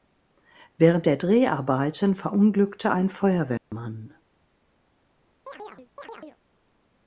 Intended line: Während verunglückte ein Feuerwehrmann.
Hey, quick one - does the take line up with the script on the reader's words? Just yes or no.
no